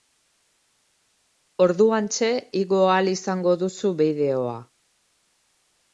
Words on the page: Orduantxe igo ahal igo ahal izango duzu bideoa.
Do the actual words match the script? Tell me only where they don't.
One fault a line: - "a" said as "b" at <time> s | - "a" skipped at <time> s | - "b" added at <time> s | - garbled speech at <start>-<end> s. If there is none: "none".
- "igo ahal" skipped at 3.1 s